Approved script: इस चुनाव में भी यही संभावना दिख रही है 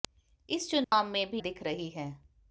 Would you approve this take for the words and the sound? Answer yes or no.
no